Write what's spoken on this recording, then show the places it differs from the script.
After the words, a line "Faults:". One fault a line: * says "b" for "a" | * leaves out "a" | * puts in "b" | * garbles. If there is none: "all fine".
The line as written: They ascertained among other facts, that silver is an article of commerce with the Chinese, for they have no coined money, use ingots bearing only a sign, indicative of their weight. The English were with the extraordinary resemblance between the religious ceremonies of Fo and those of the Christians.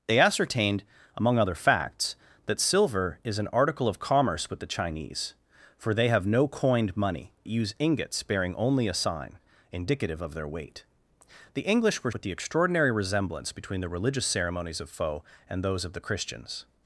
They ascertained among other facts, that silver is an article of commerce with the Chinese, for they have no coined money, use ingots bearing only a sign, indicative of their weight. The English were with the extraordinary resemblance between the religious ceremonies of Fo and those of the Christians.
Faults:
all fine